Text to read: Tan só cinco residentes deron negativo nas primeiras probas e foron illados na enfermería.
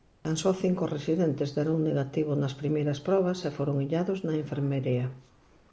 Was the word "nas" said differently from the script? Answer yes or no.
no